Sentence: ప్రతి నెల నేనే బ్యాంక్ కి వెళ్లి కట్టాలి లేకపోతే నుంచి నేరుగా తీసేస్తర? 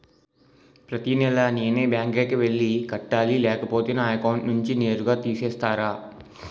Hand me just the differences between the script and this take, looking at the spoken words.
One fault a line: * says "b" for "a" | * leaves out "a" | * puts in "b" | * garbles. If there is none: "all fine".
* puts in "నా అకౌంట్"